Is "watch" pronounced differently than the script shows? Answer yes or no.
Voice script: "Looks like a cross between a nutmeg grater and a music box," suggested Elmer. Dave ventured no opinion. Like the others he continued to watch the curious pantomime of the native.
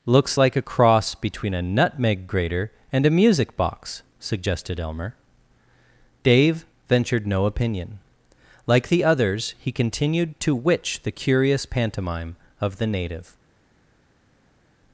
yes